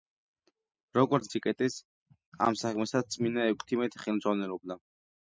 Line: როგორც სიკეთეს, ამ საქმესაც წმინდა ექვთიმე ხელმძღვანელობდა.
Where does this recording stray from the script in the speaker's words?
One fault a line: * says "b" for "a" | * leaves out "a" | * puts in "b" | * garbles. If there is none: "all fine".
all fine